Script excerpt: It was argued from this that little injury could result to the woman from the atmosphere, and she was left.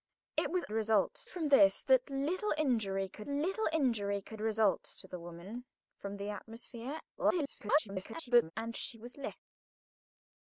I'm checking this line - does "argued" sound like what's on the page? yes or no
no